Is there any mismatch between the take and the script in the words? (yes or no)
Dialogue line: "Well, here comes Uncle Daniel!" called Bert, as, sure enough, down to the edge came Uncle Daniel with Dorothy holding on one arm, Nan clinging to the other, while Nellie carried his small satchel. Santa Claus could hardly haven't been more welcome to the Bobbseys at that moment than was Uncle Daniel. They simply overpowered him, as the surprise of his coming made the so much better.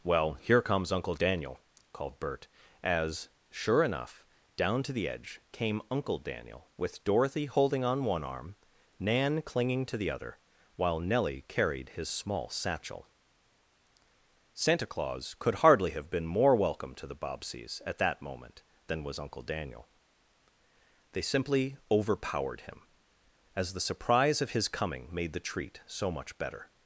yes